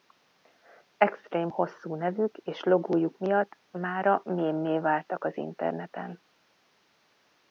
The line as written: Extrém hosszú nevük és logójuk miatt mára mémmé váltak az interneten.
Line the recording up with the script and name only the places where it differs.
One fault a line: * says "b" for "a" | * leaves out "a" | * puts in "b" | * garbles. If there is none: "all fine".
all fine